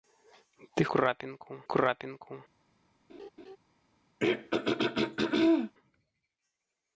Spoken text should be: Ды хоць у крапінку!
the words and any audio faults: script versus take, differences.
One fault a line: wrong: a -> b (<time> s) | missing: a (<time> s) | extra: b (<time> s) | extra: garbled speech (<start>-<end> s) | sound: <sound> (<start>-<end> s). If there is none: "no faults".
wrong: хоць -> крапінку (0.9 s)
sound: laugh (3.1-3.6 s)
sound: throat clearing (4.2-5.7 s)